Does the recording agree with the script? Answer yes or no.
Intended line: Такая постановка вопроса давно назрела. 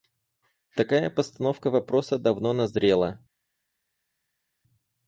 yes